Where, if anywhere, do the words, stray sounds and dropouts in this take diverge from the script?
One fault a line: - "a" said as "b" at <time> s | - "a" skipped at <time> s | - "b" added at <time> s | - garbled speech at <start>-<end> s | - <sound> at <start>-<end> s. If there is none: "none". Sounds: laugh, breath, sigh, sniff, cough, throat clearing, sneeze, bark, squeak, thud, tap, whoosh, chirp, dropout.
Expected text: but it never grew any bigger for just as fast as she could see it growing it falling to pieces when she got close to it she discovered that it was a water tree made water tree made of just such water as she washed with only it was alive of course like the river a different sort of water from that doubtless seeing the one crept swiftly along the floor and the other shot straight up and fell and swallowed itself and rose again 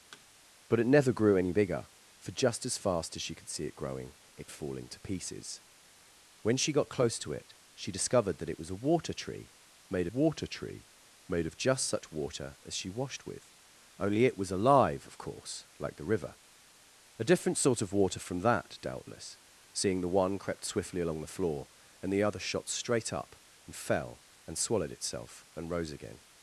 - thud at 0.1-0.3 s